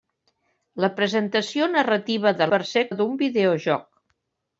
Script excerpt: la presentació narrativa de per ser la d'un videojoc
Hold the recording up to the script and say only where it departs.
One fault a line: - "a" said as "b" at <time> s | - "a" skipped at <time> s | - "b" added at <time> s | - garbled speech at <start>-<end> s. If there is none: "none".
none